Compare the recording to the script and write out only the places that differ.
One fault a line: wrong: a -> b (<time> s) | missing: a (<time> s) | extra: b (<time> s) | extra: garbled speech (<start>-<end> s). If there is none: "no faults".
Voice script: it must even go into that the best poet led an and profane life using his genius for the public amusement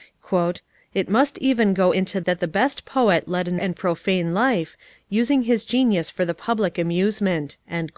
no faults